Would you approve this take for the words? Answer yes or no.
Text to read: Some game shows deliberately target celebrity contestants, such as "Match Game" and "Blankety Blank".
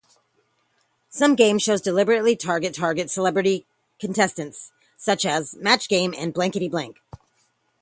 no